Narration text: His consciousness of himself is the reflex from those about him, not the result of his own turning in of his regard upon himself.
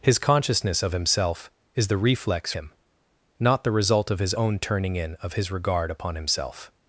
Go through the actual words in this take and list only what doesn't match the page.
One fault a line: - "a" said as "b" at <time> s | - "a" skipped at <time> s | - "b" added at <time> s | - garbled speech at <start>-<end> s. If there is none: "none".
- "from those about" skipped at 2.5 s